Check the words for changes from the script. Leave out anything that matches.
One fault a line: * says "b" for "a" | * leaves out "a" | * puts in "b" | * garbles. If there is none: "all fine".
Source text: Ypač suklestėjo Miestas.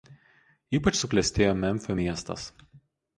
* puts in "Memfio"